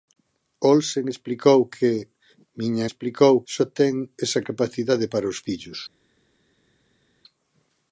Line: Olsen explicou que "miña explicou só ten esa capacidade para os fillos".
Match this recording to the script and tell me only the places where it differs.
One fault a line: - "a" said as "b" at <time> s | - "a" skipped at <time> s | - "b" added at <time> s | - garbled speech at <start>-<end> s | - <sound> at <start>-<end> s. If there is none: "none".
none